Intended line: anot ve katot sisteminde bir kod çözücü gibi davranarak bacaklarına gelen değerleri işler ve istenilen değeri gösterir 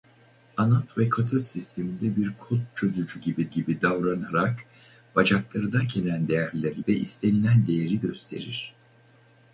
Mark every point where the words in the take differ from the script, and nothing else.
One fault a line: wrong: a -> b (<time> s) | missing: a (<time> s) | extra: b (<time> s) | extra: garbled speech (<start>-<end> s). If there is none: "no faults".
extra: gibi (3.5 s)
missing: işler (6.8 s)